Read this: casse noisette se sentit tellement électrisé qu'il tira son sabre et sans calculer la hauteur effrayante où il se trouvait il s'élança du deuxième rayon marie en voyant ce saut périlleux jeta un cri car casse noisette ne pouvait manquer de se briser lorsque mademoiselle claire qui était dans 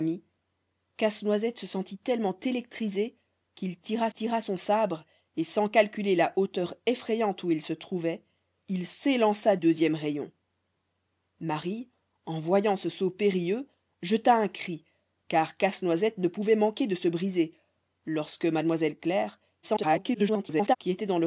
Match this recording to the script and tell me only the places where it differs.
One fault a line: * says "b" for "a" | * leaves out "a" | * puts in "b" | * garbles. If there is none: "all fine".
* puts in "tira"
* leaves out "du"
* garbles